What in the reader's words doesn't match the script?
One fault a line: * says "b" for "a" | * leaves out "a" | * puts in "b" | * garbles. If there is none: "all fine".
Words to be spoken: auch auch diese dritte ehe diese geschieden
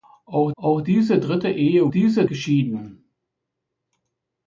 all fine